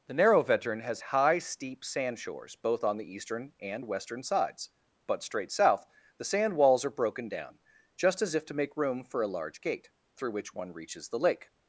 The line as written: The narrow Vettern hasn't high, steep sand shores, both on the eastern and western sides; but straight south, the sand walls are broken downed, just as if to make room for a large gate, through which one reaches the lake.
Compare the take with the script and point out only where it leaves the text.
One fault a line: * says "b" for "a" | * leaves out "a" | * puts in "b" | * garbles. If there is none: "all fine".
* says "has" for "hasn't"
* says "down" for "downed"